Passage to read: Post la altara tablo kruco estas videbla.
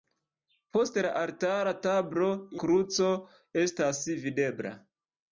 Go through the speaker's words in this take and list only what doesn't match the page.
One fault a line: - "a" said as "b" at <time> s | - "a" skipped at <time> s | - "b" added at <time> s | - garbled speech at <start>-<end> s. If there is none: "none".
none